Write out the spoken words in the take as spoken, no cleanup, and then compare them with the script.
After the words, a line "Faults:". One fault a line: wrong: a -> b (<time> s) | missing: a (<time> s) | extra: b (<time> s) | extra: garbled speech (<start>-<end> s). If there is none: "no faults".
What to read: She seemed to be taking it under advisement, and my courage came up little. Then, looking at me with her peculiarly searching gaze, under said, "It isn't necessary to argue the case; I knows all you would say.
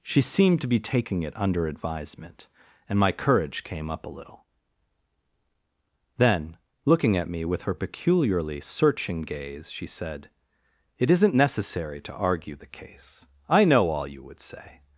She seemed to be taking it under advisement, and my courage came up a little. Then, looking at me with her peculiarly searching gaze, she said, "It isn't necessary to argue the case; I know all you would say.
Faults:
extra: a (4.0 s)
wrong: under -> she (9.7 s)
wrong: knows -> know (13.6 s)